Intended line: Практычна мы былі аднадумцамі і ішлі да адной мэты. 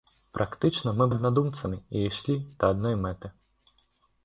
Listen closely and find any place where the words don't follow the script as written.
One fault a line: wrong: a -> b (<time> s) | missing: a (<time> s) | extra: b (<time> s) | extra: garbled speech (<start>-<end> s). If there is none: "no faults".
missing: былі (1.1 s)